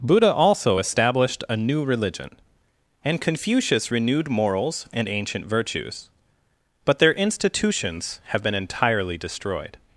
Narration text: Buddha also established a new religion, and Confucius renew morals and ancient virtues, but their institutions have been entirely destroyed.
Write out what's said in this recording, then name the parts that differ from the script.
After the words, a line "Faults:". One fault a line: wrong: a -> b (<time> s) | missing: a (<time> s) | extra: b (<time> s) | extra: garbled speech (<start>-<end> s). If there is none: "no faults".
Buddha also established a new religion, and Confucius renewed morals and ancient virtues, but their institutions have been entirely destroyed.
Faults:
wrong: renew -> renewed (3.9 s)